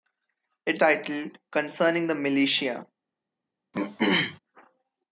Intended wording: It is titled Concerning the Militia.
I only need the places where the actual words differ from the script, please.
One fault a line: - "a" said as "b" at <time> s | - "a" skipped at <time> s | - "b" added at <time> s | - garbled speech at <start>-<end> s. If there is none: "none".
- "is" skipped at 0.8 s